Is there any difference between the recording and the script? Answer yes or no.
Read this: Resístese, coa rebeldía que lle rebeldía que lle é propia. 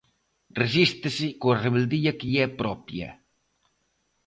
yes